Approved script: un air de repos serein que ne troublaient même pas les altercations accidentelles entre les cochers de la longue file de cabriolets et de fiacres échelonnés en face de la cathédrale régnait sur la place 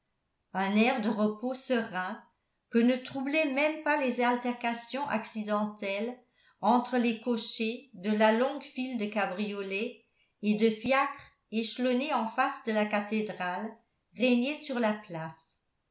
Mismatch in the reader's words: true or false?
false